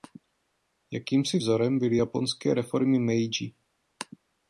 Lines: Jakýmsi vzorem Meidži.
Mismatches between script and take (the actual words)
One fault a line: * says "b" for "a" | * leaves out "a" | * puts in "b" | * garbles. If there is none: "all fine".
* puts in "byly japonské reformy"